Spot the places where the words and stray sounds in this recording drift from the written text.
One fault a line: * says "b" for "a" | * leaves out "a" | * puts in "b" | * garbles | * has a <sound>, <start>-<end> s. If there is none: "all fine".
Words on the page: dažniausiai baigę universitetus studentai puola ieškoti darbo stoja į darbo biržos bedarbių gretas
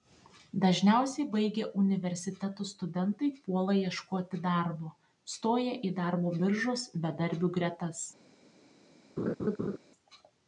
* has a laugh, 9.2-9.8 s